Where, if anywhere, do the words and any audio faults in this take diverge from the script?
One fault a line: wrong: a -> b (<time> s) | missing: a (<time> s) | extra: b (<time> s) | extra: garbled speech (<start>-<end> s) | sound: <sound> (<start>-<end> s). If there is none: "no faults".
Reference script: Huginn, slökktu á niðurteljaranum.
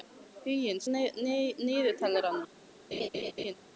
missing: slökktu (0.8 s)
sound: laugh (2.9-3.5 s)